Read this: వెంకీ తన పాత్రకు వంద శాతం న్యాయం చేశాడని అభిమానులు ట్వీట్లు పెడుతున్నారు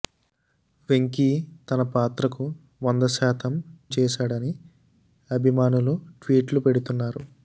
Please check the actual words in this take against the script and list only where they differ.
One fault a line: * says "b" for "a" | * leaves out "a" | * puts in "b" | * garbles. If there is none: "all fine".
* leaves out "న్యాయం"